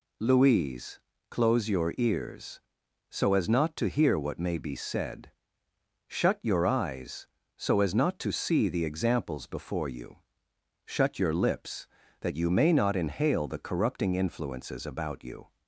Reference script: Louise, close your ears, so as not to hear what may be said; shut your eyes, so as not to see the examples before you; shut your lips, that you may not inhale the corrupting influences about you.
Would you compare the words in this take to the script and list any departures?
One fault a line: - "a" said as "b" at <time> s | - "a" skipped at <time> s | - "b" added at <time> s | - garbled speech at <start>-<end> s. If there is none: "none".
none